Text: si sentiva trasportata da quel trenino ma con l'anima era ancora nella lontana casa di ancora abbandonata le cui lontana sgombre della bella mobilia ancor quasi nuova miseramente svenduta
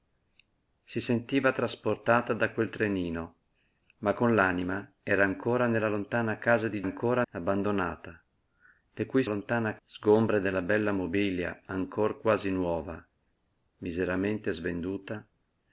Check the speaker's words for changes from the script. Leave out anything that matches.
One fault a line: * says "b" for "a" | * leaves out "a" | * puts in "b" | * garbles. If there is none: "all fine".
all fine